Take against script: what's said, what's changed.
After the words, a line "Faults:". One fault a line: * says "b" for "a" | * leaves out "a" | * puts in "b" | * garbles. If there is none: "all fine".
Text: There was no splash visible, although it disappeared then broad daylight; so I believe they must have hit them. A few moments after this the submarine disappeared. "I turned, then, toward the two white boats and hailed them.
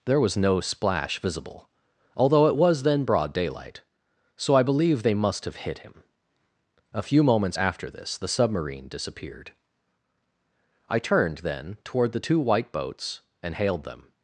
There was no splash visible, although it was then broad daylight; so I believe they must have hit him. A few moments after this the submarine disappeared. "I turned, then, toward the two white boats and hailed them.
Faults:
* says "was" for "disappeared"
* says "him" for "them"